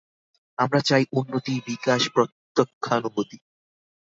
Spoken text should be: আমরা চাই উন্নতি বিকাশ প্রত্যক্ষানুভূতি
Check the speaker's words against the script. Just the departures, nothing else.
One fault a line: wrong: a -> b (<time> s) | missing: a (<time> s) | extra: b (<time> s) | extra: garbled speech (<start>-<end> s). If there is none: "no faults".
no faults